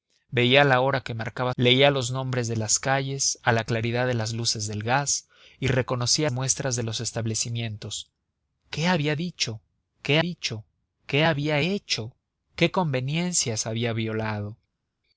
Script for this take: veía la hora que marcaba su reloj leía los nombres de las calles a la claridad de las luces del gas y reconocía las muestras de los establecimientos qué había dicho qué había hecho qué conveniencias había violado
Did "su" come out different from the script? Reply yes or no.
yes